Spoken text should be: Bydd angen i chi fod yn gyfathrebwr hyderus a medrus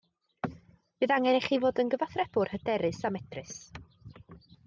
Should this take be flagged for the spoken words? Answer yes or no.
no